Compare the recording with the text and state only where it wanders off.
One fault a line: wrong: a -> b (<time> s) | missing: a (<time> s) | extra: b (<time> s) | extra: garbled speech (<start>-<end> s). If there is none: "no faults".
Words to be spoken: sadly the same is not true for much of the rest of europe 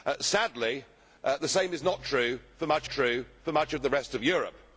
extra: true for much (2.9 s)